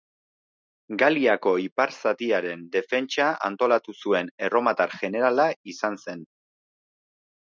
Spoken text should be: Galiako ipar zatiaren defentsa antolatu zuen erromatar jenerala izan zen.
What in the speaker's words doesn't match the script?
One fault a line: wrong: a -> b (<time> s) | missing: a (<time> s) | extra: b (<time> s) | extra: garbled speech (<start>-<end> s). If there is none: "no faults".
no faults